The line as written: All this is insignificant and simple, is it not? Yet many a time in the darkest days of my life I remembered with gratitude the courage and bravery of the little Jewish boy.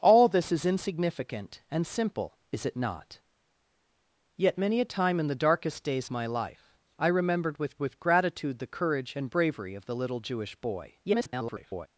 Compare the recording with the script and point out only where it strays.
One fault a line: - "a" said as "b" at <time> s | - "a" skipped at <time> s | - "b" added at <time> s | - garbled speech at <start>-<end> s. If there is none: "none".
- "of" skipped at 6.1 s
- "with" added at 7.8 s
- garbled speech at 11.0-11.9 s